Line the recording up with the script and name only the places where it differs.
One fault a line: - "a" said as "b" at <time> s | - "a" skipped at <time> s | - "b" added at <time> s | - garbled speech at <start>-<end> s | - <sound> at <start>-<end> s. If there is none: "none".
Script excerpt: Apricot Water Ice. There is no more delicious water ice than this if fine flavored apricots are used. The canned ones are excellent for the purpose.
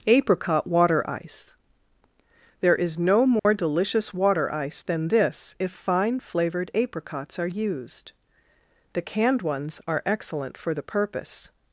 - dropout at 3.4-3.5 s